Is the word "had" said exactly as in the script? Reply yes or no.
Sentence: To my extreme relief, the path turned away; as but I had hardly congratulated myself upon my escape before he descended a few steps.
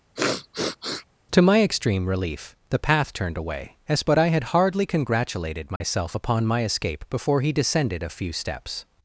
yes